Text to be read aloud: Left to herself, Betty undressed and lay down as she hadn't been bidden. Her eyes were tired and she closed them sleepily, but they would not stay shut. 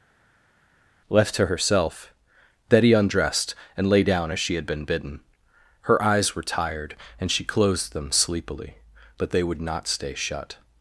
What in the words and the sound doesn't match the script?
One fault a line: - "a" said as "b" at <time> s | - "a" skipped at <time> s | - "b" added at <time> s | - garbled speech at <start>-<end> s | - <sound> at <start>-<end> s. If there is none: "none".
- "hadn't" said as "had" at 4.5 s